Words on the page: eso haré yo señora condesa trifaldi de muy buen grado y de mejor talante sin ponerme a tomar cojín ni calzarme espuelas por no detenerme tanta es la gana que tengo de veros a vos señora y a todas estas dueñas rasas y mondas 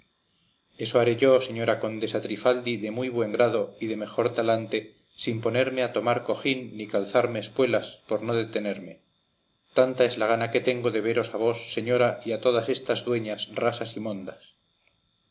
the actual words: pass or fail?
pass